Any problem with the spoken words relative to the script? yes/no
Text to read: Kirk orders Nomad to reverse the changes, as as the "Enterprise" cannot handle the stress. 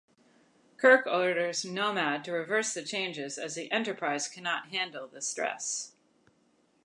yes